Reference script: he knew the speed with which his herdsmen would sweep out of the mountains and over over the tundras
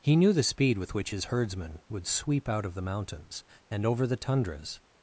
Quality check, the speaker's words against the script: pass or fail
fail